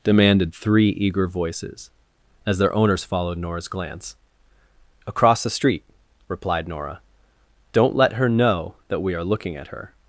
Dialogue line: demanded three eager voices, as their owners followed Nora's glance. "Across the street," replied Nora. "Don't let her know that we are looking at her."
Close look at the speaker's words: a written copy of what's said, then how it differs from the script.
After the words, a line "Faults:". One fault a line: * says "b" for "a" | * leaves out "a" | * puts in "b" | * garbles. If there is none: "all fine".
demanded three eager voices, as their owners followed Nora's glance. "Across the street," replied Nora. "Don't let her know that we are looking at her."
Faults:
all fine